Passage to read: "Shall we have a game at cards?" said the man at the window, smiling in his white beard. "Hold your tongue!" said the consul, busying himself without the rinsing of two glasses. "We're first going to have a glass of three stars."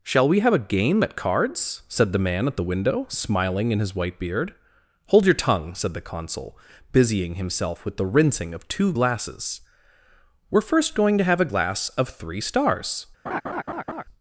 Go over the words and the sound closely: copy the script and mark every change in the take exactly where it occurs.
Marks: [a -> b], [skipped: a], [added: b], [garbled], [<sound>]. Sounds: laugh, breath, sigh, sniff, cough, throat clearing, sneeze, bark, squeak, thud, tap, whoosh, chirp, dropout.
"Shall we have a game at cards?" said the man at the window, smiling in his white beard. "Hold your tongue!" said the consul, busying himself [without -> with] the rinsing of two glasses. "We're first going to have a glass of three stars." [laugh]